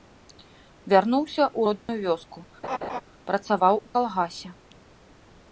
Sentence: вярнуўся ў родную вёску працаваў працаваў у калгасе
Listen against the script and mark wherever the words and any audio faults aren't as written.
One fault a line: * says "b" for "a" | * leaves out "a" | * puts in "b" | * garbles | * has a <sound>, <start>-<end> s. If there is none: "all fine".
* has a dropout, 1.8-1.9 s
* has a laugh, 2.6-3.0 s
* leaves out "працаваў"